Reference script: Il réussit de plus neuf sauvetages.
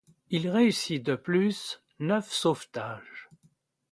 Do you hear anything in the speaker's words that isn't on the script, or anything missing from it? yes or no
no